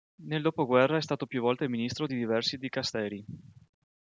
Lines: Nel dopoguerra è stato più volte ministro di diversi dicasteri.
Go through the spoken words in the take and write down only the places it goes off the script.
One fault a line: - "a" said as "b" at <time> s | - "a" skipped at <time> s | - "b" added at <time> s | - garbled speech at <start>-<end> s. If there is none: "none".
none